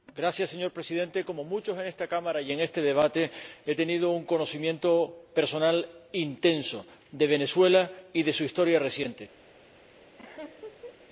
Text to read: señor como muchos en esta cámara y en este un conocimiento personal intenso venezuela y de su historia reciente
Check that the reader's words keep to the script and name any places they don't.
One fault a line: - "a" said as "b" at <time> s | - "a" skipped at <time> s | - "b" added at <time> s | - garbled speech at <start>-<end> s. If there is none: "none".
- "presidente" added at 0.7 s
- "debate he tenido" added at 2.8 s
- "de" added at 7.1 s